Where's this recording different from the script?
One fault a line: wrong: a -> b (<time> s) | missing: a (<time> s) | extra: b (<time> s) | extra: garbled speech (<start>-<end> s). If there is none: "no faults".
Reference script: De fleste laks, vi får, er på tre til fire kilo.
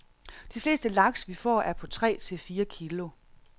no faults